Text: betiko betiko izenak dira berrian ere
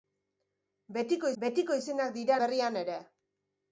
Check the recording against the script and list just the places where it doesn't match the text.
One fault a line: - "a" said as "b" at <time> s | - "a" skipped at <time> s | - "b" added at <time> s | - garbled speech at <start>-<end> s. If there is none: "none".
none